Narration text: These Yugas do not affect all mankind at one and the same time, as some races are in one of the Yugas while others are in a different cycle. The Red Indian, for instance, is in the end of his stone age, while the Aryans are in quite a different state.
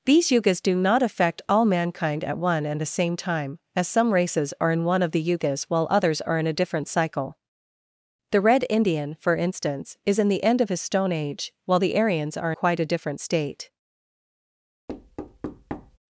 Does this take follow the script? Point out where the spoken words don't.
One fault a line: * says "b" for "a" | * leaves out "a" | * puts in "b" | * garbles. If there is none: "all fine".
* leaves out "in"